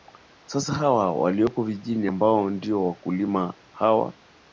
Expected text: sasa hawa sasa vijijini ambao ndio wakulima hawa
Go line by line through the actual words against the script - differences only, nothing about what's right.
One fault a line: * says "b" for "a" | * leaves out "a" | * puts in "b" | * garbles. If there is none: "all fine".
* says "walioko" for "sasa"